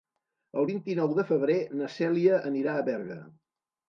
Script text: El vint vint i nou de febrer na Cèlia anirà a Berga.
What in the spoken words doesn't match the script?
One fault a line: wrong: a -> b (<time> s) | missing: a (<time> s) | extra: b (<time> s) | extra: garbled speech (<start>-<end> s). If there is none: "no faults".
missing: vint (0.8 s)